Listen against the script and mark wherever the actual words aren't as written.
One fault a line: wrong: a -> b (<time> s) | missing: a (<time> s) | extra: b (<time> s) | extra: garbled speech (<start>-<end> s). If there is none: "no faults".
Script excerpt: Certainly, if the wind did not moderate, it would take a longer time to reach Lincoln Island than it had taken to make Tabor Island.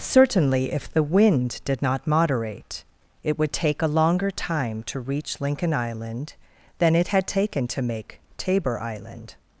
no faults